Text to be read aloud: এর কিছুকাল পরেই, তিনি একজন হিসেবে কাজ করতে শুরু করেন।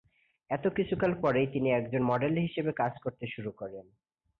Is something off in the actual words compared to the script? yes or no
yes